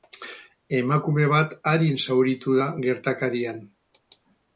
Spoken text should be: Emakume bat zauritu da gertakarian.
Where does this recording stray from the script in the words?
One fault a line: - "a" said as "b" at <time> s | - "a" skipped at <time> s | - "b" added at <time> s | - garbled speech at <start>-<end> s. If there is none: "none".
- "arin" added at 1.7 s